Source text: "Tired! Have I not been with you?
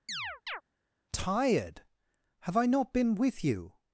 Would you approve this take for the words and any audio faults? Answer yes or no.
no